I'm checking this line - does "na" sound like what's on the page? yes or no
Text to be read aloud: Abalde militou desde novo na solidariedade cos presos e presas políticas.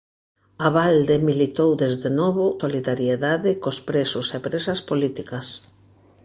no